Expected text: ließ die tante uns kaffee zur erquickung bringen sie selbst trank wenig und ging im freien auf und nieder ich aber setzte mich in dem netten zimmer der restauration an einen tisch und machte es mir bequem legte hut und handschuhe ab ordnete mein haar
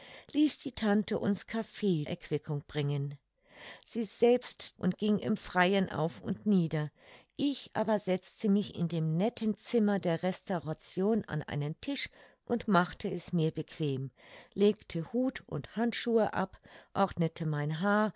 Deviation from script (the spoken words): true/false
true